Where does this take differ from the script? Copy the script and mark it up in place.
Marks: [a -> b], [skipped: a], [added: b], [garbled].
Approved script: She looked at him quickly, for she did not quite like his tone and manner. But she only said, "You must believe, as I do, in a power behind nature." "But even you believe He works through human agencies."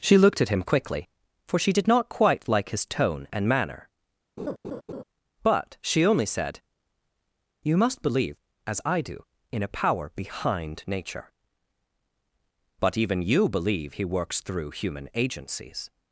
She looked at him quickly, for she did not quite like his tone and manner. But she only said, "You must believe, as I do, in a power behind nature." "But even you believe He works through human agencies."